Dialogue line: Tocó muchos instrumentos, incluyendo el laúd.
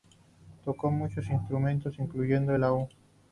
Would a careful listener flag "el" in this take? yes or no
no